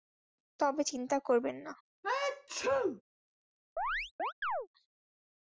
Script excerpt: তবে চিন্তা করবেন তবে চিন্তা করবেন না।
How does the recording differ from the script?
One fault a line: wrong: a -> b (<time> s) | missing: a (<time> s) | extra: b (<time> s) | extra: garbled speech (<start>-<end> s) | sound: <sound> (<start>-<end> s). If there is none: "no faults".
missing: তবে চিন্তা করবেন (1.6 s)
sound: sneeze (2.0-3.0 s)
sound: chirp (3.8-4.7 s)